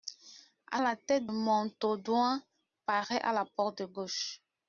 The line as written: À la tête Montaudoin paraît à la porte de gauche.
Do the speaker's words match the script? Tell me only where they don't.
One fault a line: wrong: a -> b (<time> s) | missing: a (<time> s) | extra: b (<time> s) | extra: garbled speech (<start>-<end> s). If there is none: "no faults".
no faults